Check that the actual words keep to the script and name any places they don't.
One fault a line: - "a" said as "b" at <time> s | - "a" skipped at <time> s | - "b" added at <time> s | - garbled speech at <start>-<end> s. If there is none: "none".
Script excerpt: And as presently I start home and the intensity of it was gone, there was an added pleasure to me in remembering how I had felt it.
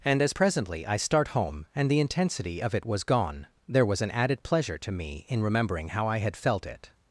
none